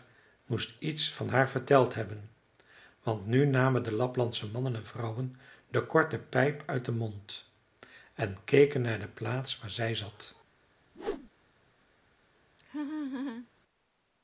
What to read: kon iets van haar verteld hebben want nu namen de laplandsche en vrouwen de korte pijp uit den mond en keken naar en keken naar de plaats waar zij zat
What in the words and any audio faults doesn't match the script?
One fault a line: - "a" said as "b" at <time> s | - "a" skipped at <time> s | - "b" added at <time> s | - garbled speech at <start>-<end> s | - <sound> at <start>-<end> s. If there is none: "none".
- "kon" said as "moest" at 0.5 s
- "mannen" added at 4.5 s
- "en keken naar" skipped at 9.0 s
- whoosh at 10.9-11.3 s
- laugh at 12.6-13.5 s